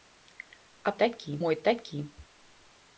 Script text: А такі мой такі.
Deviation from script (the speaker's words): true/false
false